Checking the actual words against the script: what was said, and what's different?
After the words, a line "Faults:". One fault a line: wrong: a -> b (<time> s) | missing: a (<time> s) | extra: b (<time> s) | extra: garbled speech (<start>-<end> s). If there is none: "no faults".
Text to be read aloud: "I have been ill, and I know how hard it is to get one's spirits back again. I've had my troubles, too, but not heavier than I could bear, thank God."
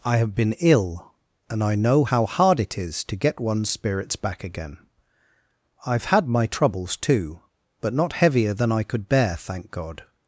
"I have been ill, and I know how hard it is to get one's spirits back again. I've had my troubles, too, but not heavier than I could bear, thank God."
Faults:
no faults